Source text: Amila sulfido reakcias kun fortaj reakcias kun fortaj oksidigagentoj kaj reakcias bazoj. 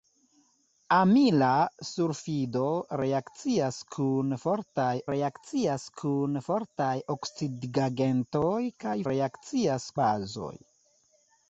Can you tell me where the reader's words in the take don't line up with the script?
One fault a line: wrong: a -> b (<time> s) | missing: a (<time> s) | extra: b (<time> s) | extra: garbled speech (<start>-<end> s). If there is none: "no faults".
no faults